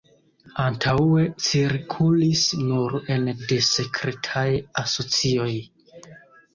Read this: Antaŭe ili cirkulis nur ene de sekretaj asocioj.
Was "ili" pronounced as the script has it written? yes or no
no